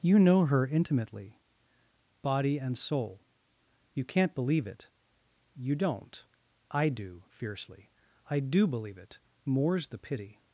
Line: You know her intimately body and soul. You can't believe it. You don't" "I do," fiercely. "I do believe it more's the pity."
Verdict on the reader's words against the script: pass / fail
pass